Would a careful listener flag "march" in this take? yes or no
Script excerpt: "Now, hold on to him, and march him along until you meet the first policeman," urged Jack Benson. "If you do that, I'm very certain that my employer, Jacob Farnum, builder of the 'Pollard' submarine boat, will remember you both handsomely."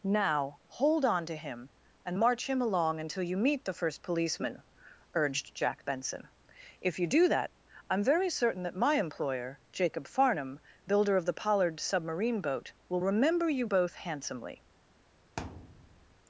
no